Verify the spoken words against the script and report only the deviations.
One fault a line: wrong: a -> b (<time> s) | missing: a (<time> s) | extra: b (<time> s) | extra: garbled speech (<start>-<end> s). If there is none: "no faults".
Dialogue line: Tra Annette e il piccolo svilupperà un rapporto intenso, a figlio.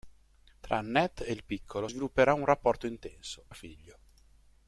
no faults